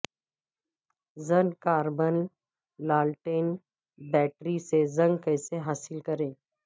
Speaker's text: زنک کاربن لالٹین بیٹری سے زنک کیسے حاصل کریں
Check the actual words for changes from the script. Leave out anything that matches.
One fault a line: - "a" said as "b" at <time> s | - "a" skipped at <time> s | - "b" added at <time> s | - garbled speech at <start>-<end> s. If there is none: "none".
none